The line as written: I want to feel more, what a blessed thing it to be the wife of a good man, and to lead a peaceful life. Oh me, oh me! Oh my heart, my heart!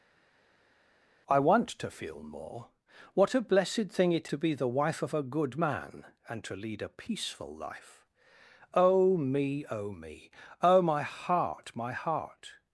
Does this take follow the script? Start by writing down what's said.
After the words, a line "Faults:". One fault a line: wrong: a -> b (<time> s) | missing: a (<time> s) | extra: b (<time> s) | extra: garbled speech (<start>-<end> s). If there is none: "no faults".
I want to feel more, what a blessed thing it to be the wife of a good man, and to lead a peaceful life. Oh me, oh me! Oh my heart, my heart!
Faults:
no faults